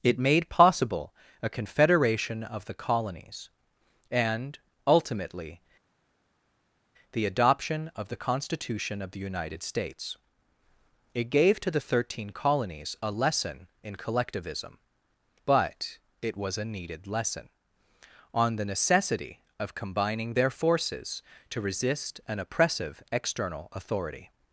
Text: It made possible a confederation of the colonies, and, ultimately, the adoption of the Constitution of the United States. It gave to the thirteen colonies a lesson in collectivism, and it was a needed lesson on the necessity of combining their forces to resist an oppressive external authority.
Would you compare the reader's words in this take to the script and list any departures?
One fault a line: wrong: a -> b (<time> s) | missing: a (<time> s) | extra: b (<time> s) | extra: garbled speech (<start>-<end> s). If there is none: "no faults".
wrong: and -> but (15.5 s)